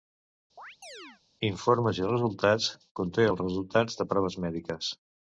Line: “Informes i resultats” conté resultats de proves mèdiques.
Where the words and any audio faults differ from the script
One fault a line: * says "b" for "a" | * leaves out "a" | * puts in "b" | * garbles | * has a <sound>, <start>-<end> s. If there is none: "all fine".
* has a chirp, 0.6-1.2 s
* puts in "els"